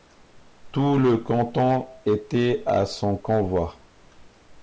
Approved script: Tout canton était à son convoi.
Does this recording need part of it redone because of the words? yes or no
yes